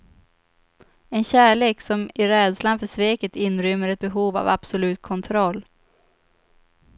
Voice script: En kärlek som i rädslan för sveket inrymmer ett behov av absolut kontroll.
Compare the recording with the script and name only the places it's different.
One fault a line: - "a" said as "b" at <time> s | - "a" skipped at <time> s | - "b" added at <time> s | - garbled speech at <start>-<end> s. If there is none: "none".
none